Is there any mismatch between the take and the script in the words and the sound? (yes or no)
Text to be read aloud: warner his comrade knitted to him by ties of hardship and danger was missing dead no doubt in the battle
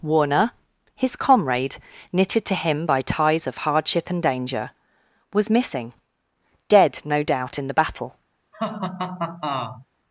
yes